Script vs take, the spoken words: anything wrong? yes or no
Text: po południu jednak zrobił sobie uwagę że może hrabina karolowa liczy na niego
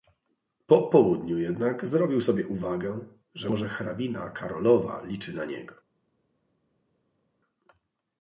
no